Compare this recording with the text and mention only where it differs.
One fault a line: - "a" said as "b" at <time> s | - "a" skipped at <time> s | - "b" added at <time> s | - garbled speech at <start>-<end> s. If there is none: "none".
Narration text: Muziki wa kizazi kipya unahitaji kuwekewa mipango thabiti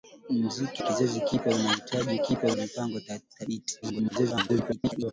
- "wa" skipped at 0.8 s
- "kuwekewa" said as "kipya" at 2.2 s
- garbled speech at 3.8-5.1 s